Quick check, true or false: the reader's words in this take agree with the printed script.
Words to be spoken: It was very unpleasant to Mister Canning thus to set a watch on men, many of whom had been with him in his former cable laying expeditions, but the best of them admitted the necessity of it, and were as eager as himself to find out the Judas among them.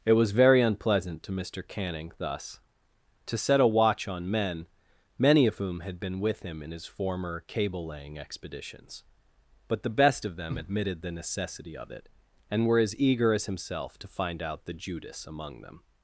true